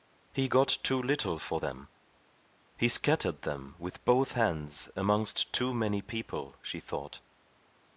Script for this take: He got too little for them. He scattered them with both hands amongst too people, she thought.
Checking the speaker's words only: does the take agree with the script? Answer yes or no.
no